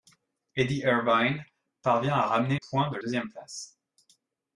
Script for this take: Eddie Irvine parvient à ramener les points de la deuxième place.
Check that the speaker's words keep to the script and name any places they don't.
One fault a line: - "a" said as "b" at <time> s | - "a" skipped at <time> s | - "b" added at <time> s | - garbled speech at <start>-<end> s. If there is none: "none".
- "les" skipped at 2.6 s
- "la" skipped at 3.0 s